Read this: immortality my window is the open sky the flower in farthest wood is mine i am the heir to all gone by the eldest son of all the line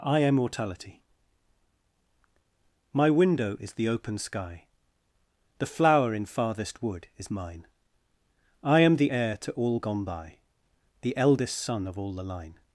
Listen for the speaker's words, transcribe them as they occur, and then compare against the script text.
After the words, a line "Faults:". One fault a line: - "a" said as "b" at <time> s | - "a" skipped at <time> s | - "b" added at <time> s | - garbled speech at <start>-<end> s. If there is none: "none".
i am mortality my window is the open sky the flower in farthest wood is mine i am the heir to all gone by the eldest son of all the line
Faults:
- "immortality" said as "i am mortality" at 0.0 s